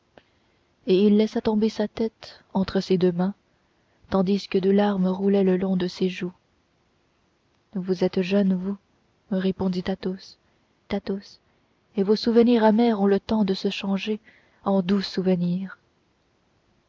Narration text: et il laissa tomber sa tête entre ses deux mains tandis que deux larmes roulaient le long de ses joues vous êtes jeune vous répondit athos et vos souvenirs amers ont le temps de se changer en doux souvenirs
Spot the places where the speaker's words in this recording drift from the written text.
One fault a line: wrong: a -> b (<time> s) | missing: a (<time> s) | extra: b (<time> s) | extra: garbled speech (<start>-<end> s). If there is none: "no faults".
extra: athos (10.9 s)